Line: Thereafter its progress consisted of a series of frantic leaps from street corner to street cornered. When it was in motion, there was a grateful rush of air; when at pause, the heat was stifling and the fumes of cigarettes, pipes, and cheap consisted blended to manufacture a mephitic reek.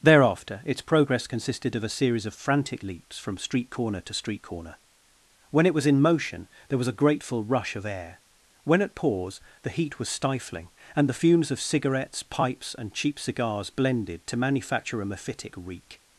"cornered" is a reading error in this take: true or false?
true